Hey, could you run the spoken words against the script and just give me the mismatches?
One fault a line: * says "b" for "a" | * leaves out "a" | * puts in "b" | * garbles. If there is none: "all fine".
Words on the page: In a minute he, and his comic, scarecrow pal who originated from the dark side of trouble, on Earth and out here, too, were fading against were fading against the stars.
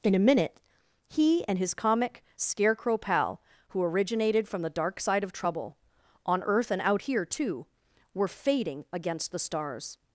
* leaves out "were fading against"